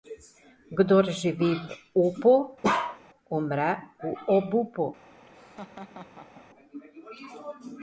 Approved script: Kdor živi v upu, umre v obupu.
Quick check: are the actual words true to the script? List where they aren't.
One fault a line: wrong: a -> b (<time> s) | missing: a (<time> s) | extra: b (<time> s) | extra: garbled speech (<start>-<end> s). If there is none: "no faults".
no faults